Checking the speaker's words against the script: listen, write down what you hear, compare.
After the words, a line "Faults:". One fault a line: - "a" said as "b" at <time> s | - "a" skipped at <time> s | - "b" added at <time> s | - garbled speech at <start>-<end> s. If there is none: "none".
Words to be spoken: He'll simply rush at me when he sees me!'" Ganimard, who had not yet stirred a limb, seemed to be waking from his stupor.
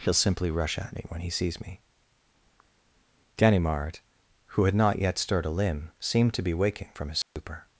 He'll simply rush at me when he sees me!'" Ganimard, who had not yet stirred a limb, seemed to be waking from his stupor.
Faults:
none